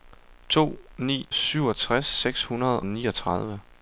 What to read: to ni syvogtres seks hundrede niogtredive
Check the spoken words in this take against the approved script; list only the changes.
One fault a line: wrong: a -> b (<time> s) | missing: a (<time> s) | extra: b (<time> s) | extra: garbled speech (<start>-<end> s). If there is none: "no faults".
no faults